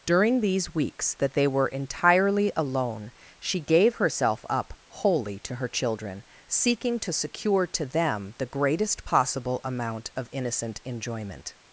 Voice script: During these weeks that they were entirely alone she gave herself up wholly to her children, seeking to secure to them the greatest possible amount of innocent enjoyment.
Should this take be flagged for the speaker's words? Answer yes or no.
no